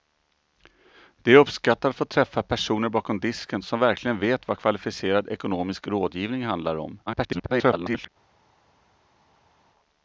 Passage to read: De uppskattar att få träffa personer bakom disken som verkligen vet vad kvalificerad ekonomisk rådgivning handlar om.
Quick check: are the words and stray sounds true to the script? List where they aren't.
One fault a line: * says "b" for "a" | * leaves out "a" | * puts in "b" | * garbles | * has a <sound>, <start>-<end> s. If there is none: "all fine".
* garbles